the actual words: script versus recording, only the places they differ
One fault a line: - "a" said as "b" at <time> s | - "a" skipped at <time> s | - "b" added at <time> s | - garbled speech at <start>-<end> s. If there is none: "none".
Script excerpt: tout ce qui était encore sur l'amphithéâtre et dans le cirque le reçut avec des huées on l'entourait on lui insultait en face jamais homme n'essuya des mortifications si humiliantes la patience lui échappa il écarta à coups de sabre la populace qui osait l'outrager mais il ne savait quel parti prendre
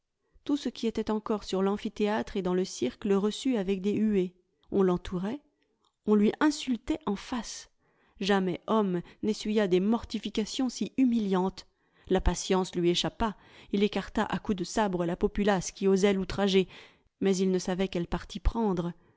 none